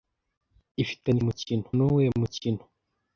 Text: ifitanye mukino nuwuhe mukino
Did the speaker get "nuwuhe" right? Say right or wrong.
right